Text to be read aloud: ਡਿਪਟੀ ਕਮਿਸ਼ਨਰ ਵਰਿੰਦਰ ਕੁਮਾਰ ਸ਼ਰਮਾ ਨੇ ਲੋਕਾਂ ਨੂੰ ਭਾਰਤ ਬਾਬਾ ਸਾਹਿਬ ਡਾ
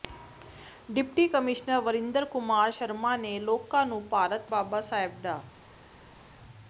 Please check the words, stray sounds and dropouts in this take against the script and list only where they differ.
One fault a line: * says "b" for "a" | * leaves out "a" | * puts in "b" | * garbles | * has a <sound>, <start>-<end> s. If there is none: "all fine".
all fine